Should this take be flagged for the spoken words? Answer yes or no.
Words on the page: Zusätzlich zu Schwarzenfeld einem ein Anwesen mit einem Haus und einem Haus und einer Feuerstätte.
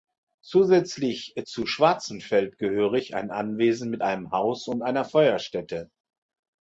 yes